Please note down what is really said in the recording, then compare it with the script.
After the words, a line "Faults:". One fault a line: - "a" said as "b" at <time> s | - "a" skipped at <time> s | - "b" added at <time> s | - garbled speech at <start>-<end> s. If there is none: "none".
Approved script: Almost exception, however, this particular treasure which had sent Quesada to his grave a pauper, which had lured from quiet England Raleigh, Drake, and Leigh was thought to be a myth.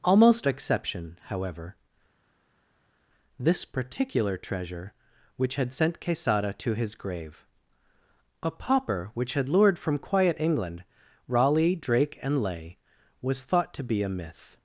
Almost exception, however, this particular treasure which had sent Quesada to his grave a pauper, which had lured from quiet England Raleigh, Drake, and Leigh was thought to be a myth.
Faults:
none